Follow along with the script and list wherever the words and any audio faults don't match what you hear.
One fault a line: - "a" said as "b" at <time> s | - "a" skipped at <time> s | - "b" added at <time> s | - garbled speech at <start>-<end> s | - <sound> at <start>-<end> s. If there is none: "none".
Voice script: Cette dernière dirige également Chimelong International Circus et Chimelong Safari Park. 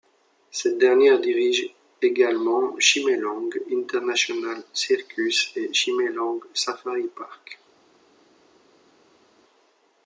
none